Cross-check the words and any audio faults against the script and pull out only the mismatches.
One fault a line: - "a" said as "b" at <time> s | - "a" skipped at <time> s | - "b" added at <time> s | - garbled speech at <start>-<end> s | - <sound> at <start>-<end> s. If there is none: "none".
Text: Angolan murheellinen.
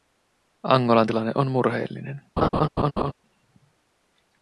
- "tilanne on" added at 1.0 s
- laugh at 2.4-3.1 s